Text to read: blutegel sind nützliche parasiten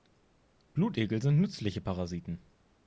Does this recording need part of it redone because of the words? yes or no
no